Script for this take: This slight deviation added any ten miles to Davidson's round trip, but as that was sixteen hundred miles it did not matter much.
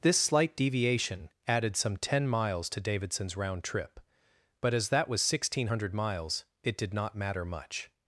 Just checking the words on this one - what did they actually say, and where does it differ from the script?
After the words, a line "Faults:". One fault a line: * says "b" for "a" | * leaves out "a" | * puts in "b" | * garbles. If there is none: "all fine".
This slight deviation added some ten miles to Davidson's round trip, but as that was sixteen hundred miles it did not matter much.
Faults:
* says "some" for "any"